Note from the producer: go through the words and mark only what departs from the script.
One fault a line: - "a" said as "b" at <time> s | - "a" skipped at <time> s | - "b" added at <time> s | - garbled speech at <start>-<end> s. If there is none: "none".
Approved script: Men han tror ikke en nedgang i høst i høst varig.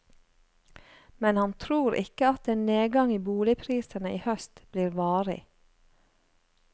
- "at" added at 2.3 s
- "høst" said as "boligprisene" at 3.3 s
- "blir" added at 4.7 s